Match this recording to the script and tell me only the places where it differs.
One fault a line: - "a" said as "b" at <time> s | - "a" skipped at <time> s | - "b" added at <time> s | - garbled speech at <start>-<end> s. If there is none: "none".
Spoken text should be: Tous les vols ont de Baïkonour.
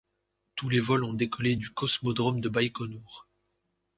- "décollé du cosmodrome" added at 1.1 s